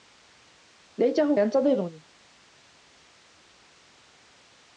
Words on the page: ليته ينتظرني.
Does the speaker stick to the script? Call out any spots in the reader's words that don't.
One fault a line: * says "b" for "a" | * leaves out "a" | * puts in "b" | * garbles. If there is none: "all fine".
all fine